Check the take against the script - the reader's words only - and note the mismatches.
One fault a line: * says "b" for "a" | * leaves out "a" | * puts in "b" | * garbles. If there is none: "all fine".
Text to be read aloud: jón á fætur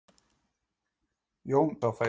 all fine